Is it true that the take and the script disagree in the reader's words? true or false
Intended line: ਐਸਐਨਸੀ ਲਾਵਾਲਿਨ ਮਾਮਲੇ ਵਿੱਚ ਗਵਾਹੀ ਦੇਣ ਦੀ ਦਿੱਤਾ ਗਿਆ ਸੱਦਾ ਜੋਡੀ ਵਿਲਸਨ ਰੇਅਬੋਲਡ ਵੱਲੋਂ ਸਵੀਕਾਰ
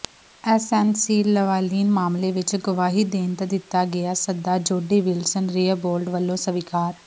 true